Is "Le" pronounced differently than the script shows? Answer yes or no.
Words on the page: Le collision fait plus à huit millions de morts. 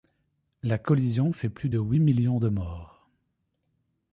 yes